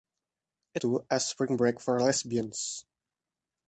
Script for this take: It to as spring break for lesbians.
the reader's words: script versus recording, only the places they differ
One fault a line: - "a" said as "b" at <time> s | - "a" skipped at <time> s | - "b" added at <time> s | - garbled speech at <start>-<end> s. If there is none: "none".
none